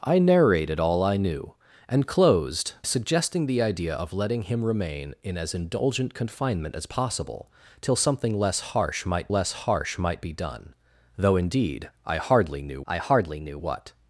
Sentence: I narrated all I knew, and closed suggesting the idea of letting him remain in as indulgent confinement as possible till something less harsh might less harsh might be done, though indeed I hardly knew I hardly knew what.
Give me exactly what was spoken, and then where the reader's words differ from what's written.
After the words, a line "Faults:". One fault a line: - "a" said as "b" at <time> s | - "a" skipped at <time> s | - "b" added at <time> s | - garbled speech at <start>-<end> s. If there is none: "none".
I narrated all I knew, and closed suggesting the idea of letting him remain in as indulgent confinement as possible till something less harsh might less harsh might be done, though indeed I hardly knew I hardly knew what.
Faults:
none